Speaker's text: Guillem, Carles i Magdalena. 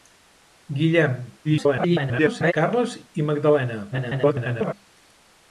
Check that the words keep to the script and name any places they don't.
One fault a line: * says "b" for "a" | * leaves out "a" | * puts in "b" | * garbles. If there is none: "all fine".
* garbles
* garbles